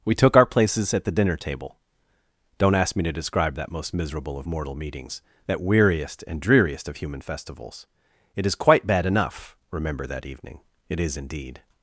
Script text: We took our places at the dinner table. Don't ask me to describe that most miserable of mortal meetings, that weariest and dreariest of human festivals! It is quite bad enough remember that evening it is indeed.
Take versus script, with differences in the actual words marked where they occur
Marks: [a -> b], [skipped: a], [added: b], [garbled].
We took our places at the dinner table. Don't ask me to describe that most miserable of mortal meetings, that weariest and dreariest of human festivals! It is quite bad enough remember that evening it is indeed.